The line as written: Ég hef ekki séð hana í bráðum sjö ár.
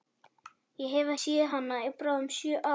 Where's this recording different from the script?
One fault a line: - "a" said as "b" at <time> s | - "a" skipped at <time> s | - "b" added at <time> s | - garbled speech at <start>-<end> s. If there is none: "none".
- "ekki" skipped at 1.1 s